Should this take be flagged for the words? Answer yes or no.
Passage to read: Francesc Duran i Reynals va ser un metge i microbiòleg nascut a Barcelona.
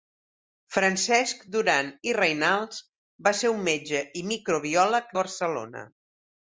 yes